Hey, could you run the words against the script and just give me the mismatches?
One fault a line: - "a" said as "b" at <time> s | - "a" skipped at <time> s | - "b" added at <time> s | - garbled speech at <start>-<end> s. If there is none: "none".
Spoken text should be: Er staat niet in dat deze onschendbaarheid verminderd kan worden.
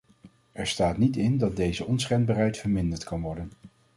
none